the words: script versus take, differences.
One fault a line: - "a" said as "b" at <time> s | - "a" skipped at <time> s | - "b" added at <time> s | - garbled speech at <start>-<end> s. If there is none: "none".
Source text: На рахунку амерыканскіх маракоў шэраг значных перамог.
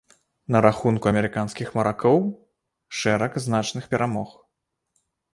none